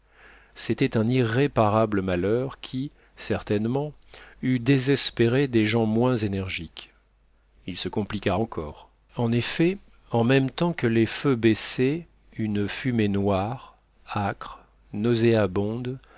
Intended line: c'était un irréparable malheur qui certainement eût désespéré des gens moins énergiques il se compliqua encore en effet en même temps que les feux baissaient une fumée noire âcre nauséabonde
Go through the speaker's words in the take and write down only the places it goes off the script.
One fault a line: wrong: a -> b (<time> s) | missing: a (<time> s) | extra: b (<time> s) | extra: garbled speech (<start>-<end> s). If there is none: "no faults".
no faults